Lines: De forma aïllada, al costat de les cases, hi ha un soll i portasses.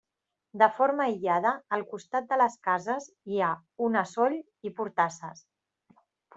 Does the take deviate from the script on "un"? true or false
true